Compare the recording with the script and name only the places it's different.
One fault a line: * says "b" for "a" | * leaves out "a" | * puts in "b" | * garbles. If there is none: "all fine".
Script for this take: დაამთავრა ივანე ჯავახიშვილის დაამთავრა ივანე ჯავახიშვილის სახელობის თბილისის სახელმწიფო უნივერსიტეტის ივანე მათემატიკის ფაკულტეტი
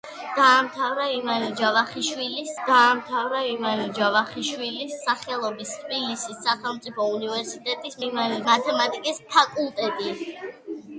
all fine